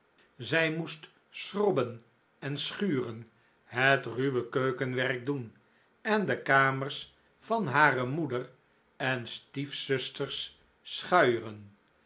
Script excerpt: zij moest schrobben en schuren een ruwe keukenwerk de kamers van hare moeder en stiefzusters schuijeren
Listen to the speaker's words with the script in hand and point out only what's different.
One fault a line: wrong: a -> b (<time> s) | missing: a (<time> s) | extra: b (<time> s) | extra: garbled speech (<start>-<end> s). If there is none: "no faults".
wrong: een -> het (3.6 s)
extra: doen en (5.3 s)